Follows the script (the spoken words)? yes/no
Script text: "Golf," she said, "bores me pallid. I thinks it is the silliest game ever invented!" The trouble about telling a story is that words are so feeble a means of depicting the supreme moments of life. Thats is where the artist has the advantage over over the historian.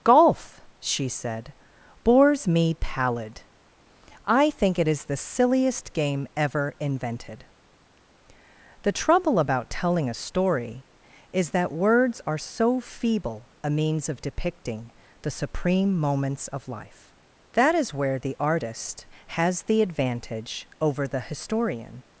no